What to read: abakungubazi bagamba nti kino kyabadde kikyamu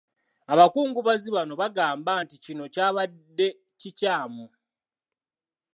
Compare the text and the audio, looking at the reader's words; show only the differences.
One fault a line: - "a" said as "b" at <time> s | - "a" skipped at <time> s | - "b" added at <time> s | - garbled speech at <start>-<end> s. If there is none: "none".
- "bano" added at 1.4 s